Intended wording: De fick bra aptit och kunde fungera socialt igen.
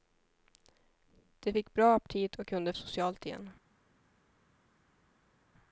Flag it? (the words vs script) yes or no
yes